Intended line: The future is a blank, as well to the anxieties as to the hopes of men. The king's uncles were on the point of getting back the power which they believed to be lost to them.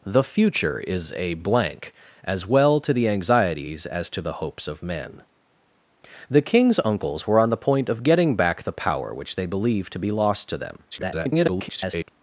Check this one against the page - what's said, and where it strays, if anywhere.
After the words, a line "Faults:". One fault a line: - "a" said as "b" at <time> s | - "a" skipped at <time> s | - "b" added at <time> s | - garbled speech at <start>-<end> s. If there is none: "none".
The future is a blank, as well to the anxieties as to the hopes of men. The king's uncles were on the point of getting back the power which they believed to be lost to them. [garbled]
Faults:
- garbled speech at 10.9-12.1 s